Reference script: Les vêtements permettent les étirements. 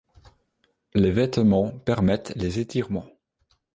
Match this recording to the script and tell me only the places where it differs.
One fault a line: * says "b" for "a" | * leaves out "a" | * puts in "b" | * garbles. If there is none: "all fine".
all fine